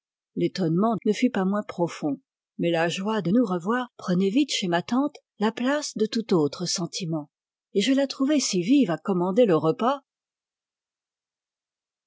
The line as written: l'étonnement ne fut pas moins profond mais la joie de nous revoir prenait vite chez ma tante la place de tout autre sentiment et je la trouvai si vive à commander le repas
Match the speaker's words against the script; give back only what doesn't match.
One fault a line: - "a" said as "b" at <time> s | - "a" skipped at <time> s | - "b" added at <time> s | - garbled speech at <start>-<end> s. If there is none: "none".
none